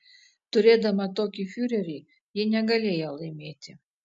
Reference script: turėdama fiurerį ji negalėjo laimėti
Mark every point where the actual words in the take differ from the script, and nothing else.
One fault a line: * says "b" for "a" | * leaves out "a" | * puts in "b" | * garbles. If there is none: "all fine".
* puts in "tokį"